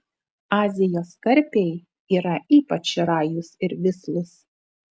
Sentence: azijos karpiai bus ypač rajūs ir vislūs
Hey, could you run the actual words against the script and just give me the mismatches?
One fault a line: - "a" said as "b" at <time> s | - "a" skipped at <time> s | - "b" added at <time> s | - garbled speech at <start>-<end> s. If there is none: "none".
- "bus" said as "yra" at 2.2 s